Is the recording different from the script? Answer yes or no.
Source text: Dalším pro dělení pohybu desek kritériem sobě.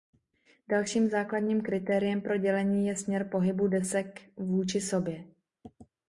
yes